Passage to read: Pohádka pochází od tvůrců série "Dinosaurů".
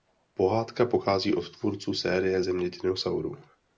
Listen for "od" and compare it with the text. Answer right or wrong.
right